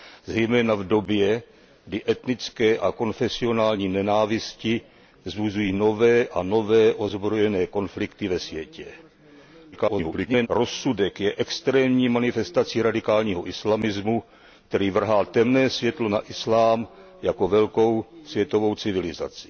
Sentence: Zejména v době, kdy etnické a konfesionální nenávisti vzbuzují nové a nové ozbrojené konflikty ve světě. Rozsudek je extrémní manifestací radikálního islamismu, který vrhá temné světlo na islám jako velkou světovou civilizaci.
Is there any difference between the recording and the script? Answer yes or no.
yes